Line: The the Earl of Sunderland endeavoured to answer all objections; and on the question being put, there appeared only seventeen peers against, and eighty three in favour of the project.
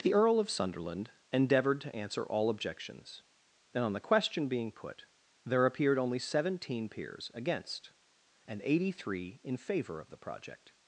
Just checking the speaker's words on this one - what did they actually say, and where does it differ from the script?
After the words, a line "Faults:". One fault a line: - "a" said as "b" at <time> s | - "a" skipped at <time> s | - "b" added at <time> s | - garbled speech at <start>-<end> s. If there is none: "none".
The Earl of Sunderland endeavoured to answer all objections; and on the question being put, there appeared only seventeen peers against, and eighty three in favour of the project.
Faults:
- "the" skipped at 0.1 s